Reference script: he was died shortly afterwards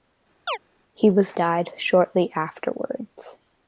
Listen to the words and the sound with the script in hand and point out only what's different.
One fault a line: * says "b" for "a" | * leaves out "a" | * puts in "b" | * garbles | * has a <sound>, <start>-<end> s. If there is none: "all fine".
* has a chirp, 0.5-0.6 s